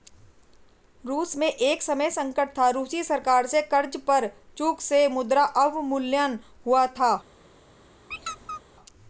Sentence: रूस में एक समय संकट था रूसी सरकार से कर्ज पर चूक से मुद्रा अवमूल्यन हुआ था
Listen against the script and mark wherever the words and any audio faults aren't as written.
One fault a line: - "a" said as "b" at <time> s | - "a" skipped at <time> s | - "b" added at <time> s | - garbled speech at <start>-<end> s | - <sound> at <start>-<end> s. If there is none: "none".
- squeak at 8.1-8.6 s